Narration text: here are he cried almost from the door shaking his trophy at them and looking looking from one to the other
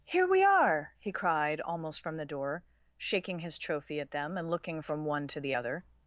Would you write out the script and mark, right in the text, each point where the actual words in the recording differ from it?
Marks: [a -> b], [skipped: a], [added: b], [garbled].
here [added: we] are he cried almost from the door shaking his trophy at them and looking [skipped: looking] from one to the other